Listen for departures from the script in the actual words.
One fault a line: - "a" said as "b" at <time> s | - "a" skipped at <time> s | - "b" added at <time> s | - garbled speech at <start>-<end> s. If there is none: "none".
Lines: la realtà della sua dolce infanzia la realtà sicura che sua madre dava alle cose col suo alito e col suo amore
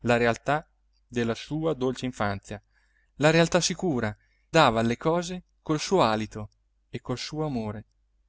- "che sua madre" skipped at 4.2 s